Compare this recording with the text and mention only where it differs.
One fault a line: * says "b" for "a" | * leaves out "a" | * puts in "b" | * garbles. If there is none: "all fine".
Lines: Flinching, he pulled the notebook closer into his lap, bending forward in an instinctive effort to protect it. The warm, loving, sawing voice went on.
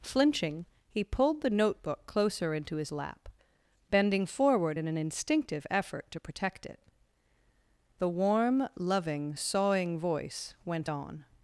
all fine